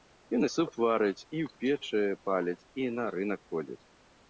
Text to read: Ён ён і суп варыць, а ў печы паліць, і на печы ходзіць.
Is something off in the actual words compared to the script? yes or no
yes